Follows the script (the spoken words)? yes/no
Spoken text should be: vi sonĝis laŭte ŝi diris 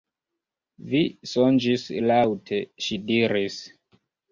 yes